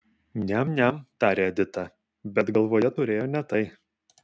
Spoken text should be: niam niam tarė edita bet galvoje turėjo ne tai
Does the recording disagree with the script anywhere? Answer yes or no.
no